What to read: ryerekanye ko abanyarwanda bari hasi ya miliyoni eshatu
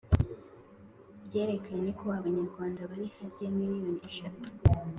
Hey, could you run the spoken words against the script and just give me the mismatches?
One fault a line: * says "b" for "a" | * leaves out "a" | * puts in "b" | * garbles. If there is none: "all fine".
all fine